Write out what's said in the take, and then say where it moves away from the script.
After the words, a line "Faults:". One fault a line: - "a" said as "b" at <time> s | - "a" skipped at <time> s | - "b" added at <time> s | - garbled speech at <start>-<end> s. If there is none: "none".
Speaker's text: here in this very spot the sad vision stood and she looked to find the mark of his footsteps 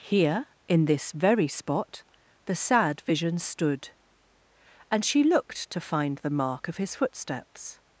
here in this very spot the sad vision stood and she looked to find the mark of his footsteps
Faults:
none